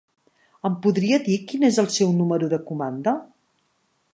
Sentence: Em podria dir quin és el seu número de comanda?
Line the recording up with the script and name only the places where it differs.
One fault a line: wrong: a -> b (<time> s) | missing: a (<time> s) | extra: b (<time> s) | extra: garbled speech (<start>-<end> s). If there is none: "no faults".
no faults